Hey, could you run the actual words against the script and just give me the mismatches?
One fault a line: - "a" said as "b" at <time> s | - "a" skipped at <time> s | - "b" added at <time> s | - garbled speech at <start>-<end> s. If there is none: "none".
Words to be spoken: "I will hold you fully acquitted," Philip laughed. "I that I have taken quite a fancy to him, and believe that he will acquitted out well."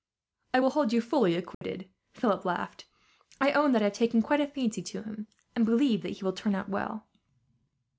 - "own" added at 3.5 s
- "acquitted" said as "turn" at 6.3 s